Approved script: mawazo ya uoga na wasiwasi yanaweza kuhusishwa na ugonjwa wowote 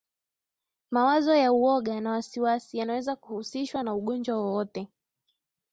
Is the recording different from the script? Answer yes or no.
no